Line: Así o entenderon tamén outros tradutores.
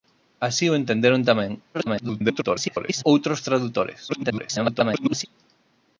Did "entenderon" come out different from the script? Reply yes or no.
no